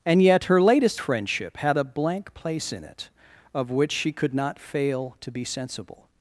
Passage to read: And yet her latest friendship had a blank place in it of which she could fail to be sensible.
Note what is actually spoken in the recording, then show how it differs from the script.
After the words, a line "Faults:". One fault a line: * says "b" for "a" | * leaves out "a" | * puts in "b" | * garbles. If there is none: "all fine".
And yet her latest friendship had a blank place in it of which she could not fail to be sensible.
Faults:
* puts in "not"